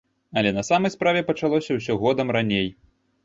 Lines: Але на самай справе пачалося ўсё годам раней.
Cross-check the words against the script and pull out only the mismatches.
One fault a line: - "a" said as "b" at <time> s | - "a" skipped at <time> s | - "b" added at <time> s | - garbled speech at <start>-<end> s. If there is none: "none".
none